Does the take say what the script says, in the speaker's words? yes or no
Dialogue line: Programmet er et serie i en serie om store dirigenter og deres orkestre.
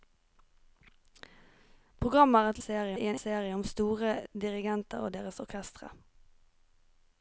yes